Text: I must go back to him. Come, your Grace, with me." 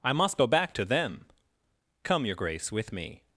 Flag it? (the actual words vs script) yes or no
yes